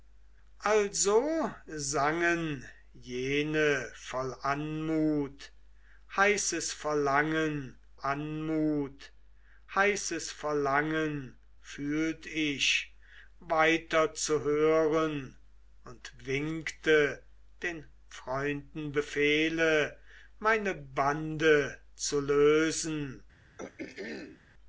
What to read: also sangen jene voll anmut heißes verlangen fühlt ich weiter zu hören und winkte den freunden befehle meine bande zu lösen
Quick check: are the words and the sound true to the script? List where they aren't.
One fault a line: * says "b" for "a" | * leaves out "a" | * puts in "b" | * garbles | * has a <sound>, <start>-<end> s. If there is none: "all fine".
* puts in "anmut heißes verlangen"
* has a throat clearing, 23.6-24.4 s